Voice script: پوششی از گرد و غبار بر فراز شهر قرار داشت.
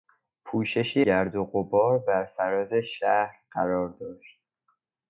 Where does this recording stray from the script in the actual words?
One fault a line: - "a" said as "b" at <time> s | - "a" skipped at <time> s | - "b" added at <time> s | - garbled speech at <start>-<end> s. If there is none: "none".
- "از" skipped at 1.1 s